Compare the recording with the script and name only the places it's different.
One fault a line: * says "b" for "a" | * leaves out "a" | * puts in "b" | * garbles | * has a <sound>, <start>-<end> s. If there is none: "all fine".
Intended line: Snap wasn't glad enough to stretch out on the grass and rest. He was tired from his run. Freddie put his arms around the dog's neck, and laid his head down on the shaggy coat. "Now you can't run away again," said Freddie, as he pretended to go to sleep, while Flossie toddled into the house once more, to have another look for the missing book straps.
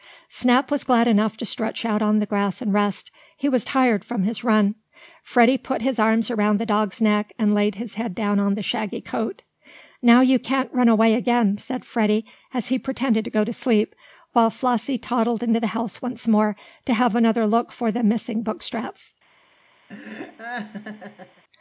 * says "was" for "wasn't"
* has a laugh, 19.9-21.4 s